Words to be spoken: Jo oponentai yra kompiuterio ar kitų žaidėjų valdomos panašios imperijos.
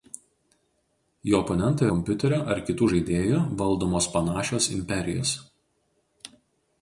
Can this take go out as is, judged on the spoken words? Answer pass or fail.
fail